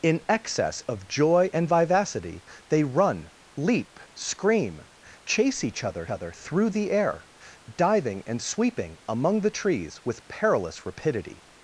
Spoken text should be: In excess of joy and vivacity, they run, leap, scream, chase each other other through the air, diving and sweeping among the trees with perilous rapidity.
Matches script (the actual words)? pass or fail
pass